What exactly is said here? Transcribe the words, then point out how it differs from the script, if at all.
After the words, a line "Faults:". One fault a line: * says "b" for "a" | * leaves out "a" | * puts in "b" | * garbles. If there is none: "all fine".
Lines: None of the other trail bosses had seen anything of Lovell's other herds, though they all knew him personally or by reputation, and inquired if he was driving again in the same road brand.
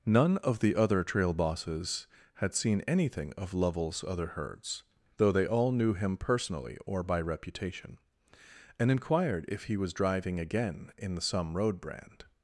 None of the other trail bosses had seen anything of Lovell's other herds, though they all knew him personally or by reputation, and inquired if he was driving again in the some road brand.
Faults:
* says "some" for "same"